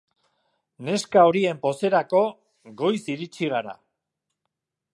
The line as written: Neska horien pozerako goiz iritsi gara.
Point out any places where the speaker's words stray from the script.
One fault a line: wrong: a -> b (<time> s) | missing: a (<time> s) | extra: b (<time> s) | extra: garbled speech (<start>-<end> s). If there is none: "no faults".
no faults